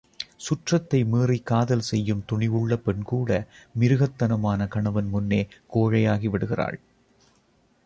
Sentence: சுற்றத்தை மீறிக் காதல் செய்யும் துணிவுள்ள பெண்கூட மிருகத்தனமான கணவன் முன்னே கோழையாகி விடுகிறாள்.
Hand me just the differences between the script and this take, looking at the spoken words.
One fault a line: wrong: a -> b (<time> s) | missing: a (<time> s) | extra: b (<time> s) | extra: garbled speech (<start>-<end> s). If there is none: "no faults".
no faults